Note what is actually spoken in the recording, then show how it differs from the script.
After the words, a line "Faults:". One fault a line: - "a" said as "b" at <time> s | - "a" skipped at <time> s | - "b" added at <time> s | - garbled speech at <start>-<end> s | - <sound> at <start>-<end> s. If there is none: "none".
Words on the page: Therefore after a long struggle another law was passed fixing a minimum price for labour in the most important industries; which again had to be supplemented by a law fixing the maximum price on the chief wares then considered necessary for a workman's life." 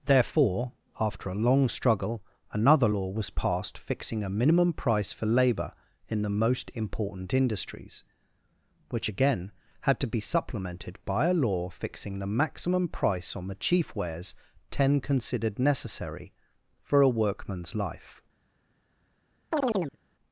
Therefore after a long struggle another law was passed fixing a minimum price for labour in the most important industries; which again had to be supplemented by a law fixing the maximum price on the chief wares ten considered necessary for a workman's life."
Faults:
- "then" said as "ten" at 14.7 s
- chirp at 19.5-20.0 s